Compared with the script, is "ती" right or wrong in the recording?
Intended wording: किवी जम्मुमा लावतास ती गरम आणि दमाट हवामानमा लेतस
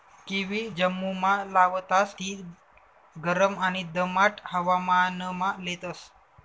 right